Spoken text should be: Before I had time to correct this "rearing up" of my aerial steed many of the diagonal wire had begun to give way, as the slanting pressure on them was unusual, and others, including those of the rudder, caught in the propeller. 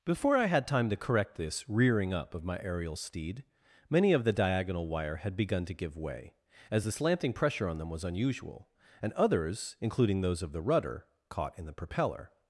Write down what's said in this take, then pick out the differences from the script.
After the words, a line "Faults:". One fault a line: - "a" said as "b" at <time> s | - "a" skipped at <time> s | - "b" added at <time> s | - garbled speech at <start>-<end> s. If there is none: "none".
Before I had time to correct this "rearing up" of my aerial steed many of the diagonal wire had begun to give way, as the slanting pressure on them was unusual, and others, including those of the rudder, caught in the propeller.
Faults:
none